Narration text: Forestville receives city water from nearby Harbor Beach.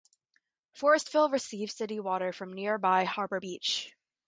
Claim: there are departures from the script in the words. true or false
false